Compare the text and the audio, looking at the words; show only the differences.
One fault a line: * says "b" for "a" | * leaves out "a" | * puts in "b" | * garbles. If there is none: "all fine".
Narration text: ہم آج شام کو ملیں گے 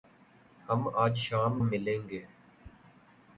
* leaves out "کو"